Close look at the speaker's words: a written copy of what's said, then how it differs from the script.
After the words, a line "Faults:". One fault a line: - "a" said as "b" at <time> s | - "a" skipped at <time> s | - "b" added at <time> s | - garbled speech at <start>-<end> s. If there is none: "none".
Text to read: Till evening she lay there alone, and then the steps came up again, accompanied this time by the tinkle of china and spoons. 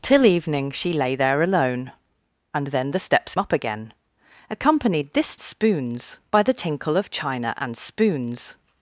Till evening she lay there alone, and then the steps up again, accompanied this spoons by the tinkle of china and spoons.
Faults:
- "came" skipped at 3.4 s
- "time" said as "spoons" at 5.4 s